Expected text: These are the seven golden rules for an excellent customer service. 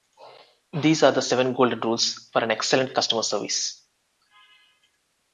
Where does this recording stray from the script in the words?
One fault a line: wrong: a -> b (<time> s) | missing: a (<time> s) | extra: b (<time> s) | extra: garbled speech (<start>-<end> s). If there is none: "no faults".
no faults